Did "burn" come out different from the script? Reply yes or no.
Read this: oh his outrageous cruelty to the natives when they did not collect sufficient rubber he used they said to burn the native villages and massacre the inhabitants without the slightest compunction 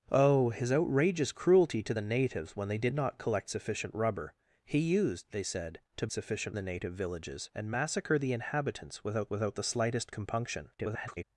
yes